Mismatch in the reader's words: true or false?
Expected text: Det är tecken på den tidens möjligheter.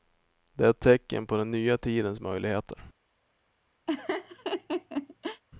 true